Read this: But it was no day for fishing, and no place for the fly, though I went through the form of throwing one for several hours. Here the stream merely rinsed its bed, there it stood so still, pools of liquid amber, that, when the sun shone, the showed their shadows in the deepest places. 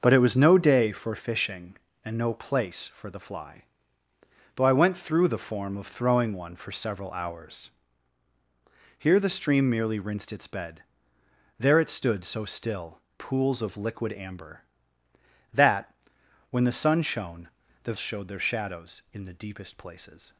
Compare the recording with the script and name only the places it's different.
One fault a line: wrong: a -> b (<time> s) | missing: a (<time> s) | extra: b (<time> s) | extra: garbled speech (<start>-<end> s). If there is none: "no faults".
no faults